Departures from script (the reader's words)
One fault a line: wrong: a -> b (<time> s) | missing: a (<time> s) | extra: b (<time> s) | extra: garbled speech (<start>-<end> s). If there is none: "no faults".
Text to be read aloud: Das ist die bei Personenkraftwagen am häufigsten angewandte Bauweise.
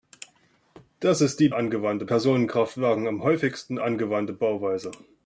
wrong: bei -> angewandte (1.5 s)